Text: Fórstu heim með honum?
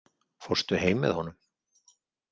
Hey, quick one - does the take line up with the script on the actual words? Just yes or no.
yes